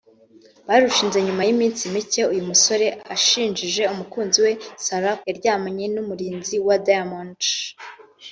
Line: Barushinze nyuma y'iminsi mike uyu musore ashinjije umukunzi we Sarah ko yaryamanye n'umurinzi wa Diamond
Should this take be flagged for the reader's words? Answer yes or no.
yes